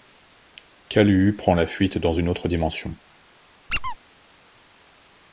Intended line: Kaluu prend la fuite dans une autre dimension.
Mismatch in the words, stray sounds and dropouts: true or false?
true